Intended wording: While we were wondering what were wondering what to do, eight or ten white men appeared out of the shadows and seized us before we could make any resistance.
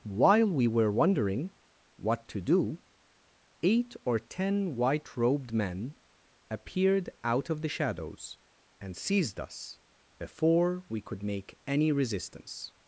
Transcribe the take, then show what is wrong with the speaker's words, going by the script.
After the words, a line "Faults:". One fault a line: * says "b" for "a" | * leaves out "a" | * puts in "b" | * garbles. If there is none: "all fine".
While we were wondering what to do, eight or ten white robed men appeared out of the shadows and seized us before we could make any resistance.
Faults:
* leaves out "were wondering what"
* puts in "robed"